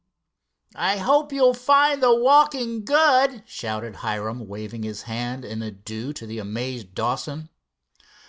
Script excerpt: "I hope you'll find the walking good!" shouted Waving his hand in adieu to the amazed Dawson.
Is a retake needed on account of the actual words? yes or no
yes